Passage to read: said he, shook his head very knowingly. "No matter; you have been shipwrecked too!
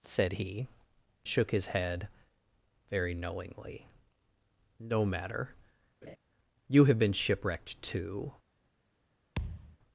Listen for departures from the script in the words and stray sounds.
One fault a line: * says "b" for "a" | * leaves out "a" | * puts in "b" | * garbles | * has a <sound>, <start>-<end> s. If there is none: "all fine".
* has a laugh, 6.0-6.2 s
* has a thud, 9.4-9.8 s